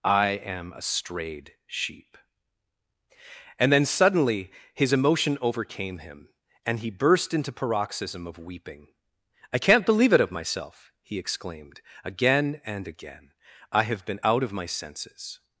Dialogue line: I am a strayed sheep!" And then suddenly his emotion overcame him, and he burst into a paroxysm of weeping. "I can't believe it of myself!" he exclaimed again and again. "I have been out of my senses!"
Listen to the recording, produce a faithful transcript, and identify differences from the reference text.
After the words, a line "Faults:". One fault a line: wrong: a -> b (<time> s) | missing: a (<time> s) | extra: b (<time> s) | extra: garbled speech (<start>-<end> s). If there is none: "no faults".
I am a strayed sheep!" And then suddenly his emotion overcame him, and he burst into paroxysm of weeping. "I can't believe it of myself!" he exclaimed again and again. "I have been out of my senses!"
Faults:
missing: a (7.5 s)